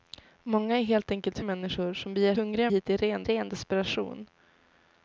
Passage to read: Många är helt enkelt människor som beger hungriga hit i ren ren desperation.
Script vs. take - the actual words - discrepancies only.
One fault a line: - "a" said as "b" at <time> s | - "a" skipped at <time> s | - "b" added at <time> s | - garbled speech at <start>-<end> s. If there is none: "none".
none